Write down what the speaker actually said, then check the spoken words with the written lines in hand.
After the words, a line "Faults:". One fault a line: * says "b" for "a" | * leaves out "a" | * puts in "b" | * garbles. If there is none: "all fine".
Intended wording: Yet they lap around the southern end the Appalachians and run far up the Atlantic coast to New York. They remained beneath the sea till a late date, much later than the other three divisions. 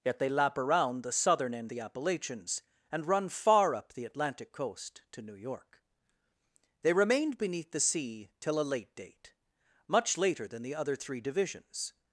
Yet they lap around the southern end the Appalachians and run far up the Atlantic coast to New York. They remained beneath the sea till a late date, much later than the other three divisions.
Faults:
all fine